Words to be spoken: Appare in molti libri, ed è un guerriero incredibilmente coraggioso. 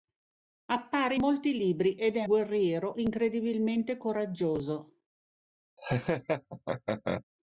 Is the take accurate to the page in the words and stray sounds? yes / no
no